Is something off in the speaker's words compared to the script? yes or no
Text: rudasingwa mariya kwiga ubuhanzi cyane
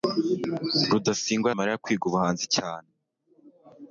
no